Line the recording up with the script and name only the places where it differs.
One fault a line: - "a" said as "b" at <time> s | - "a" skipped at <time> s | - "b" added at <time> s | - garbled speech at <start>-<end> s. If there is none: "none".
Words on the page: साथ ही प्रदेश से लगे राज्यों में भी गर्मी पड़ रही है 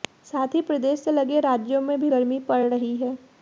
none